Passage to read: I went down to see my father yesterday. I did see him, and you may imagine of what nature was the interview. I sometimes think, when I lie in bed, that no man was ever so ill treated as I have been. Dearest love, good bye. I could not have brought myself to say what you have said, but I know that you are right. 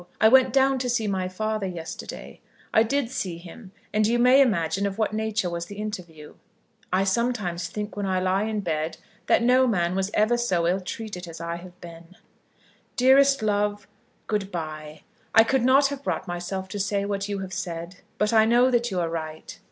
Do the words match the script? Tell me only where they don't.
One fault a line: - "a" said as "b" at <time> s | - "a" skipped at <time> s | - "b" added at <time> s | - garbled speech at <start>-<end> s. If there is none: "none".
none